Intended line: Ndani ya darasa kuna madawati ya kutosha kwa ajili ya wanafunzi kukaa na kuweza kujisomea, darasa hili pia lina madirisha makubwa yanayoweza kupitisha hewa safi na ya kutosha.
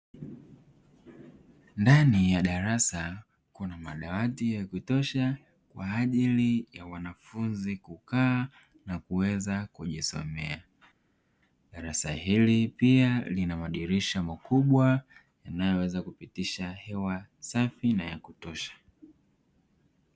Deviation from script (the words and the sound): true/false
false